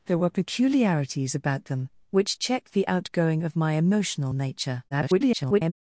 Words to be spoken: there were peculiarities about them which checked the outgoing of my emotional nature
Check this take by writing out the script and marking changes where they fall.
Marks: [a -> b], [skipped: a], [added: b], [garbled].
there were peculiarities about them which checked the outgoing of my emotional nature [garbled]